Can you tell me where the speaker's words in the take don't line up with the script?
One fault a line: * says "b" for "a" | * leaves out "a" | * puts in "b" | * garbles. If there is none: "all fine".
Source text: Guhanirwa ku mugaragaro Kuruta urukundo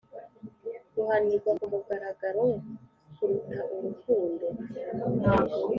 all fine